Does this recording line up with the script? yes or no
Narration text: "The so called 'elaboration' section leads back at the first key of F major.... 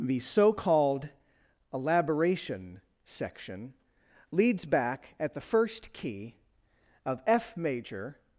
yes